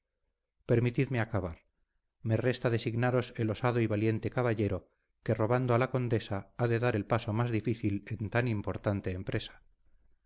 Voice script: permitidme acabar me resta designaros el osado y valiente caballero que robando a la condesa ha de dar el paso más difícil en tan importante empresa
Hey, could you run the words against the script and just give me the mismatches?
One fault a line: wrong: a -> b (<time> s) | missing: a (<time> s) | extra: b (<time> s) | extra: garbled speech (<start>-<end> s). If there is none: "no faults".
no faults